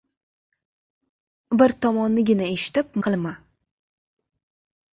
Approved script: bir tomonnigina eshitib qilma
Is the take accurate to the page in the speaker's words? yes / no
yes